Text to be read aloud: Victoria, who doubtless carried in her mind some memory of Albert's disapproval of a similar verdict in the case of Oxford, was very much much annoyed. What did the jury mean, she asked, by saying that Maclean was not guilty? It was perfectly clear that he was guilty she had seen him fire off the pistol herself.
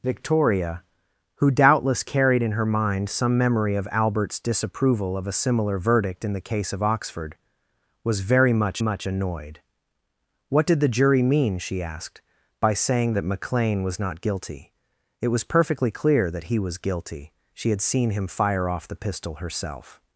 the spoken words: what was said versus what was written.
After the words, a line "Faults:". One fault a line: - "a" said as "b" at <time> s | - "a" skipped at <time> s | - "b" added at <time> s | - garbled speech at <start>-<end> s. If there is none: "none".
Victoria, who doubtless carried in her mind some memory of Albert's disapproval of a similar verdict in the case of Oxford, was very much much annoyed. What did the jury mean, she asked, by saying that Maclean was not guilty? It was perfectly clear that he was guilty she had seen him fire off the pistol herself.
Faults:
none